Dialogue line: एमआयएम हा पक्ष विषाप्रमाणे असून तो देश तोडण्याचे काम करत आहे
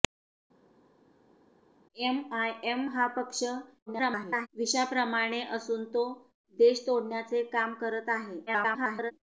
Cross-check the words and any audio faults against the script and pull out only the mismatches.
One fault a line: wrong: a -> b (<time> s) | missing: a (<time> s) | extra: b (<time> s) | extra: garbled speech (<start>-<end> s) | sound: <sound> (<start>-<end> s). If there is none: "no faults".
extra: garbled speech (3.9-4.5 s)
extra: garbled speech (8.5-9.1 s)